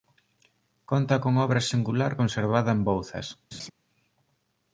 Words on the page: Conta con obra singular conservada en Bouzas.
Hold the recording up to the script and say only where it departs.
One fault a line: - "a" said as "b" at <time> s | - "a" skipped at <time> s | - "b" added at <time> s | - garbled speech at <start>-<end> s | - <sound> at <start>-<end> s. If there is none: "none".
- laugh at 3.5-3.7 s